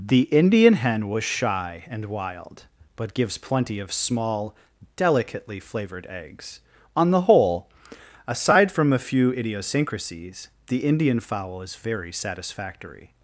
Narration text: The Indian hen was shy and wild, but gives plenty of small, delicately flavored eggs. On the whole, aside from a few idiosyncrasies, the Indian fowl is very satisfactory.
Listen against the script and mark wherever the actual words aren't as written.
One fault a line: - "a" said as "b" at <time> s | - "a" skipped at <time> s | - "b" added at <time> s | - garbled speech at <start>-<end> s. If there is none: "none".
none